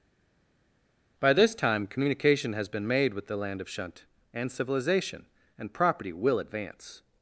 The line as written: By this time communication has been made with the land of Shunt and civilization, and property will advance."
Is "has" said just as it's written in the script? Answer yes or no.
yes